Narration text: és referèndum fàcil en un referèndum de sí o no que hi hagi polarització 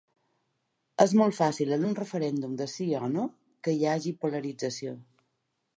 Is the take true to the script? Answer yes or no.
no